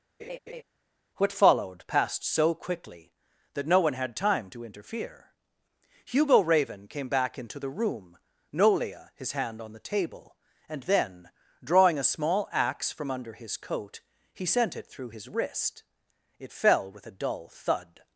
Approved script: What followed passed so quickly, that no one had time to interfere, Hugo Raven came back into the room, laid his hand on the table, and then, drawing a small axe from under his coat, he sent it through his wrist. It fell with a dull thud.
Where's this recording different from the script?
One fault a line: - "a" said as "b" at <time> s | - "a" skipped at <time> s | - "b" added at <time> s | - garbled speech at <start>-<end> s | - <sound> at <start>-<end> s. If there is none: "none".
- laugh at 0.2-0.6 s
- "laid" said as "nolia" at 8.5 s